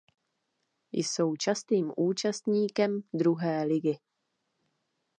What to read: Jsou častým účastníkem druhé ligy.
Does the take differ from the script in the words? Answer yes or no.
no